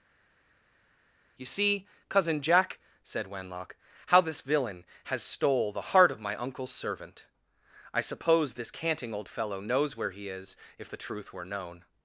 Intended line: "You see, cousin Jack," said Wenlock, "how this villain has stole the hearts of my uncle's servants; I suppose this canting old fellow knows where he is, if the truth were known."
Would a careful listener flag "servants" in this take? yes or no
yes